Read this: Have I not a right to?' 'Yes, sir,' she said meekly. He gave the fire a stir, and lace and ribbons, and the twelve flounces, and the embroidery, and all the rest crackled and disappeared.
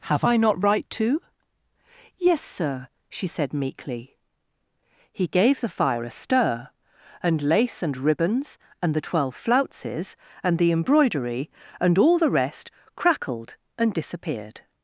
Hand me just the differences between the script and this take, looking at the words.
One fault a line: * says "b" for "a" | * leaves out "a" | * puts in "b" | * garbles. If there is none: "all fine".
* leaves out "a"